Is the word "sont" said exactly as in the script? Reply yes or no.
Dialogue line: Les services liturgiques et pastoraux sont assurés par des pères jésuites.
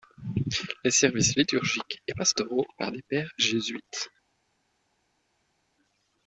no